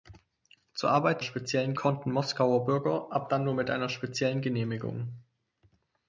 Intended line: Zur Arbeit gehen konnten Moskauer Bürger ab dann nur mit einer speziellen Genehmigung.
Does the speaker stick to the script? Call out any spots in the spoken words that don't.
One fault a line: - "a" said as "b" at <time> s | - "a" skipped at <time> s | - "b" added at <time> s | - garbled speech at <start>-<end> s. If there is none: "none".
- "gehen" said as "speziellen" at 1.2 s